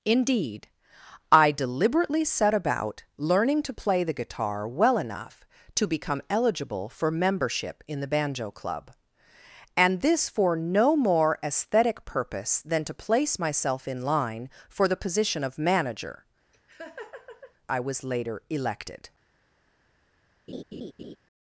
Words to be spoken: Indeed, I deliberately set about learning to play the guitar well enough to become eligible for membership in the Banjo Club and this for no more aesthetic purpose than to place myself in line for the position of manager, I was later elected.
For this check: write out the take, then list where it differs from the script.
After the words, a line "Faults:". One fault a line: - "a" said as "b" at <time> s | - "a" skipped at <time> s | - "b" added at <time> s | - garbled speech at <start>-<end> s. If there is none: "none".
Indeed, I deliberately set about learning to play the guitar well enough to become eligible for membership in the Banjo Club and this for no more aesthetic purpose than to place myself in line for the position of manager, I was later elected.
Faults:
none